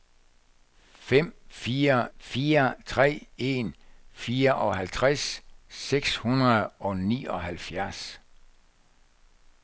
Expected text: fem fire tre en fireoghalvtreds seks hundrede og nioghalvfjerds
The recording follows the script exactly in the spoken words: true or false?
false